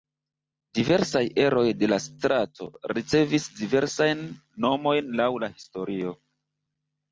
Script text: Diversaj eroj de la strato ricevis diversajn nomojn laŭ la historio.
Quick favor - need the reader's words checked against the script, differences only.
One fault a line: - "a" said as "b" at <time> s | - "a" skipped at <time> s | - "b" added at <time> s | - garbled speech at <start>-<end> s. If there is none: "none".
none